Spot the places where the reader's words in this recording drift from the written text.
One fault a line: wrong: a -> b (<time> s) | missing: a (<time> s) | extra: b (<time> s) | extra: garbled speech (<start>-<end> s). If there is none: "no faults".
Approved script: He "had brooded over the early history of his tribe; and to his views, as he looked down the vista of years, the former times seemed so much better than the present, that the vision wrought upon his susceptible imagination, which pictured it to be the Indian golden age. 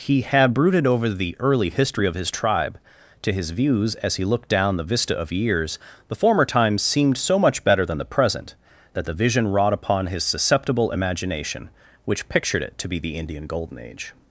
missing: and (2.8 s)